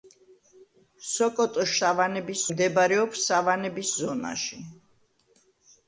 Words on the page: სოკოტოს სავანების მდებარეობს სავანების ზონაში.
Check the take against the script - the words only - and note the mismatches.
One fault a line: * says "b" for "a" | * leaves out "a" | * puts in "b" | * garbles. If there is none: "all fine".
all fine